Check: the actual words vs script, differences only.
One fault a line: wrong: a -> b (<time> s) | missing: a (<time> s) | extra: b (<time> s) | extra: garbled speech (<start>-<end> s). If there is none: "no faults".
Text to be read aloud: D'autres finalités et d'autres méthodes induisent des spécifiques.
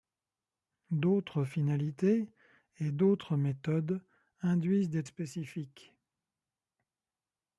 no faults